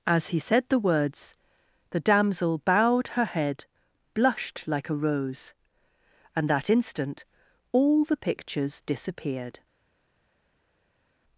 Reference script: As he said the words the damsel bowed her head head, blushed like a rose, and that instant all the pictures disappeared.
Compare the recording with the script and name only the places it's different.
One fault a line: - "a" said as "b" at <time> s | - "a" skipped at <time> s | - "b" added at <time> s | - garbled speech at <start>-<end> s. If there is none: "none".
- "head" skipped at 3.6 s